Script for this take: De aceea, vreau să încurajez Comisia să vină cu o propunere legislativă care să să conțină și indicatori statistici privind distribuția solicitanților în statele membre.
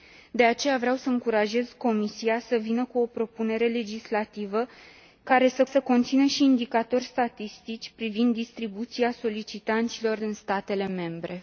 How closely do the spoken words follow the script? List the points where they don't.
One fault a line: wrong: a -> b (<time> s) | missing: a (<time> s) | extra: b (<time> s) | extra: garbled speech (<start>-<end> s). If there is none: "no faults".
no faults